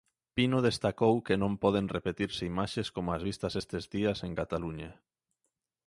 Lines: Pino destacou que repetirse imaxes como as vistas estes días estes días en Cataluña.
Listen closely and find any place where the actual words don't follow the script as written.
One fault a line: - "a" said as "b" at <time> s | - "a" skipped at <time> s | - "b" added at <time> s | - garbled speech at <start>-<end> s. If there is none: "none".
- "non poden" added at 1.4 s
- "estes días" skipped at 4.2 s